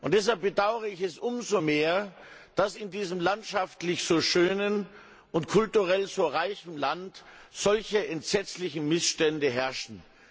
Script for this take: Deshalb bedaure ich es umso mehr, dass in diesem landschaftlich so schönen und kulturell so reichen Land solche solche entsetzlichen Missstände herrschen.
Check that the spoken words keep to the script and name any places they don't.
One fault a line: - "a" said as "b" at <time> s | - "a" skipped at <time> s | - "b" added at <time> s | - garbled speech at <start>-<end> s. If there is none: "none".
- "solche" skipped at 8.1 s